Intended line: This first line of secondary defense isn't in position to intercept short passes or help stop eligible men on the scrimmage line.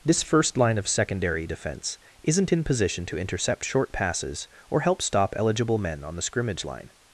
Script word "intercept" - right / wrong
right